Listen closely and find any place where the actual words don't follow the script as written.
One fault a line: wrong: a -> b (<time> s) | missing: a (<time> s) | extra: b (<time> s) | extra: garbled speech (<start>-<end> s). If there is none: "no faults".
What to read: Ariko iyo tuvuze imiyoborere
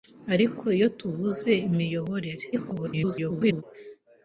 extra: garbled speech (2.5-3.6 s)